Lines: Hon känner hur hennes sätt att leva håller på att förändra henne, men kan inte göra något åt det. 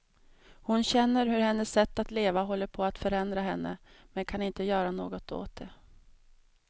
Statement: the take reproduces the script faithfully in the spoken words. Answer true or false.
true